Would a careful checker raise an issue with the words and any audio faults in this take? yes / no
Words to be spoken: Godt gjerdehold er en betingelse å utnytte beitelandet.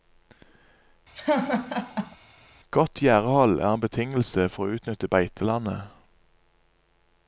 yes